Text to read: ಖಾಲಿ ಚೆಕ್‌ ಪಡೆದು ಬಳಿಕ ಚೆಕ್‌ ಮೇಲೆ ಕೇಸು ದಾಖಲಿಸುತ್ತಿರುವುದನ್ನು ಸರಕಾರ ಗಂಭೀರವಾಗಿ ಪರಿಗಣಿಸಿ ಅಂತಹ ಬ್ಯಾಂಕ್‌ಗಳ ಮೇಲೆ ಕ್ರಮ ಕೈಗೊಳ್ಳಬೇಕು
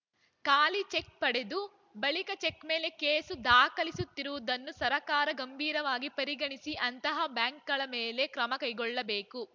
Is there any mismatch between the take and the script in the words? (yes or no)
no